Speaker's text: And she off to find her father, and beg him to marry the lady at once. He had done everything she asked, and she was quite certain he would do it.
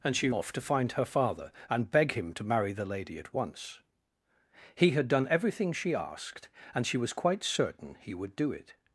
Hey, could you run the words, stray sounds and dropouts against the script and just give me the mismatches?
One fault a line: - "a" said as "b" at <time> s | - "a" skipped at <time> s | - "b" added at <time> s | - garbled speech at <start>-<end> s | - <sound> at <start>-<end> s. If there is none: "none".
none